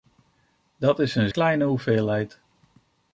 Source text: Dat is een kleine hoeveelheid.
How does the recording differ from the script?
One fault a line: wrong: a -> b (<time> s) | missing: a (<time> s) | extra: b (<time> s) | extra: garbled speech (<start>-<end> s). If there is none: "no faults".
no faults